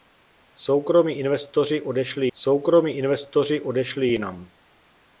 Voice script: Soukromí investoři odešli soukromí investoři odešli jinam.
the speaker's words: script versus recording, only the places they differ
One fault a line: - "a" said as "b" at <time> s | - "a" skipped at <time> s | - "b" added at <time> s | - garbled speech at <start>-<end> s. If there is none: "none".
none